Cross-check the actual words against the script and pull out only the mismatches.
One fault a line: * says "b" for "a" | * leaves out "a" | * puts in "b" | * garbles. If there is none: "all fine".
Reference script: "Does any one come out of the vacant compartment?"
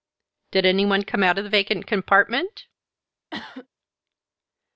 * says "Did" for "Does"